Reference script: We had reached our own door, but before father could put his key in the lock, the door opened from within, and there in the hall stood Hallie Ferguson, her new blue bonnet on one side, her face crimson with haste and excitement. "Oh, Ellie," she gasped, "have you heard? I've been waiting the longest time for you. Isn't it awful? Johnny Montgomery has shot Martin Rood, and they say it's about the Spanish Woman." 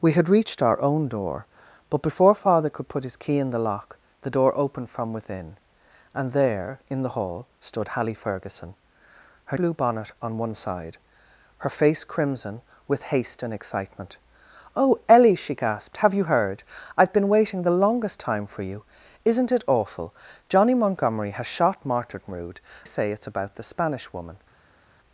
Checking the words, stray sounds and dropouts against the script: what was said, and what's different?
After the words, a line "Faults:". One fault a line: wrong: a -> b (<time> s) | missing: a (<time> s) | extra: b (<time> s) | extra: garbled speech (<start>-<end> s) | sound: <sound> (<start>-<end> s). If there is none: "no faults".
We had reached our own door, but before father could put his key in the lock, the door opened from within, and there in the hall stood Hallie Ferguson, her blue bonnet on one side, her face crimson with haste and excitement. "Oh, Ellie," she gasped, "have you heard? I've been waiting the longest time for you. Isn't it awful? Johnny Montgomery has shot Martin Rood, say it's about the Spanish Woman."
Faults:
missing: new (9.6 s)
missing: and they (22.6 s)